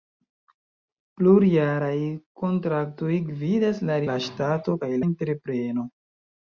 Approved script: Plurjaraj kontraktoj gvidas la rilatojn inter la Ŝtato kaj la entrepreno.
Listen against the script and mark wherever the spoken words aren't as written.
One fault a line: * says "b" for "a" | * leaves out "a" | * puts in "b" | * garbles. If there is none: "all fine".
* leaves out "rilatojn inter"
* leaves out "la"